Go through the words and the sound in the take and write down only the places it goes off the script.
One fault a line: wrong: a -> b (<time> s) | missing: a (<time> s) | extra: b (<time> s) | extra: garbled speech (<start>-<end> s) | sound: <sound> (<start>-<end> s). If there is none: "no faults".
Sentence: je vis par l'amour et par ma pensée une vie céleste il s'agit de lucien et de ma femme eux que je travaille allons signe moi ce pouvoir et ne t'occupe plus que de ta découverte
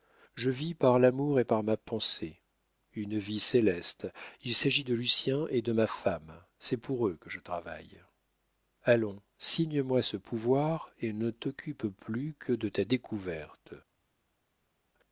extra: c'est pour (6.6 s)